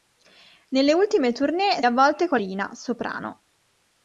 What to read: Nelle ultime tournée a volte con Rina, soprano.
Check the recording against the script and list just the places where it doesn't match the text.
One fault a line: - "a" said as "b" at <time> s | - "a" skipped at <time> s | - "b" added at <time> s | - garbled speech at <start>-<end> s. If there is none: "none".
none